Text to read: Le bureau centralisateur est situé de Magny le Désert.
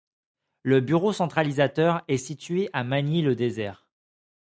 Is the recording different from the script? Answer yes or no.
yes